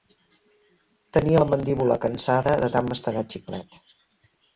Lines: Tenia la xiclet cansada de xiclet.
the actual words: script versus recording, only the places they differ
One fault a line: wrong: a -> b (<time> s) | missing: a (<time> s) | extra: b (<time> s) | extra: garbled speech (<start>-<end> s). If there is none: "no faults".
wrong: xiclet -> mandíbula (1.5 s)
extra: tant mastegar (2.7 s)